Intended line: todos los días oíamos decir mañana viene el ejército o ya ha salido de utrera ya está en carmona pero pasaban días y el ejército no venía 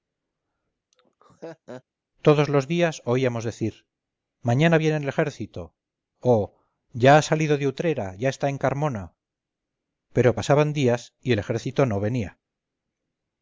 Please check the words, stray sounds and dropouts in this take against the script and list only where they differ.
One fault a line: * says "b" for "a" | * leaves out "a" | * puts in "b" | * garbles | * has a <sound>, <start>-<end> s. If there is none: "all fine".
* has a laugh, 0.9-1.8 s